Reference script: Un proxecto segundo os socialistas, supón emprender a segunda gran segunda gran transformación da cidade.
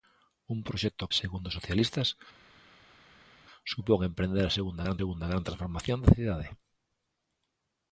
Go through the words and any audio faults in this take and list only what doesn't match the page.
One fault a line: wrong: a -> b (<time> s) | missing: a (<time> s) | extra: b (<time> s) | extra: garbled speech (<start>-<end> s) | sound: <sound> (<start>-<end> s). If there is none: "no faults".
no faults